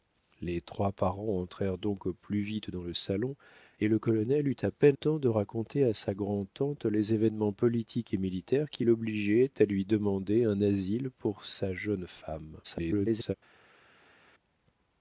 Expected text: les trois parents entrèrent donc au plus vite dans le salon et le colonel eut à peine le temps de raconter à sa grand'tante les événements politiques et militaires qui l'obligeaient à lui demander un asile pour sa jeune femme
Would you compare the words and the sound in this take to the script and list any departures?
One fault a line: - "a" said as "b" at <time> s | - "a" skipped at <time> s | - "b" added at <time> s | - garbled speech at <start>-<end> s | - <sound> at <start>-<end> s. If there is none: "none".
- "le" skipped at 5.0 s
- garbled speech at 12.6-13.3 s